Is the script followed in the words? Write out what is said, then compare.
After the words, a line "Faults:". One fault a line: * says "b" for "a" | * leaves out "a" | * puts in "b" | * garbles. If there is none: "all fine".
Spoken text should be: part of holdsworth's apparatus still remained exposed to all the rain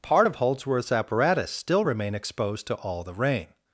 part of holdsworth's apparatus still remain exposed to all the rain
Faults:
* says "remain" for "remained"